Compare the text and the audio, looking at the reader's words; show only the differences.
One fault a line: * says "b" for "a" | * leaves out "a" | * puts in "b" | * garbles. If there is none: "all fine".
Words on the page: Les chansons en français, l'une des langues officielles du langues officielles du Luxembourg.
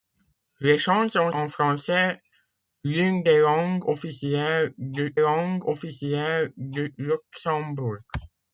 all fine